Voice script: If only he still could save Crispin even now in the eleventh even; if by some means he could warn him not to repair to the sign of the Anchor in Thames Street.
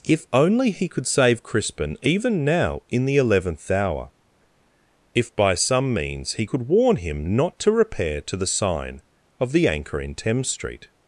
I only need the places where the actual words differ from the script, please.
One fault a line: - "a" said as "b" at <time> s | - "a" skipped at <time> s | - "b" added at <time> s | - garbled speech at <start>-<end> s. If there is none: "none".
- "still" skipped at 0.9 s
- "even" said as "hour" at 3.7 s